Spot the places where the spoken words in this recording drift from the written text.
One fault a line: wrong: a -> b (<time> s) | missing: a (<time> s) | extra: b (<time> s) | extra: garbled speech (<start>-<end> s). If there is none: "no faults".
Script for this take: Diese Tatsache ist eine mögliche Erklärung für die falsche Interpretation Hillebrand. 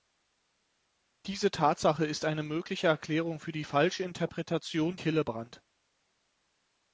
no faults